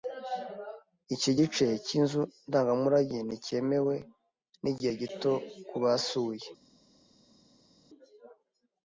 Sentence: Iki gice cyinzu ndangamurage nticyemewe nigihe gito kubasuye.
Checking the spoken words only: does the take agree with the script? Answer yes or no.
yes